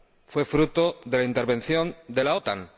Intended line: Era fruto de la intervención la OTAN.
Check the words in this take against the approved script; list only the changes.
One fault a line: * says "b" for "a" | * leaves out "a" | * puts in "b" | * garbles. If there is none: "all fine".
* says "Fue" for "Era"
* puts in "de"